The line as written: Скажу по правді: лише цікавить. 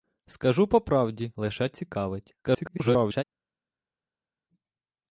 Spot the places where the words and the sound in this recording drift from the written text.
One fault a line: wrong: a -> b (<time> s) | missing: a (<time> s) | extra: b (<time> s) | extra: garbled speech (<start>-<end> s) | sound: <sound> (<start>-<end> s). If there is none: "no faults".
extra: garbled speech (2.4-3.2 s)